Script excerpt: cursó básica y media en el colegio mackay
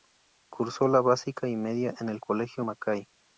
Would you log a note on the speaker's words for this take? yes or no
yes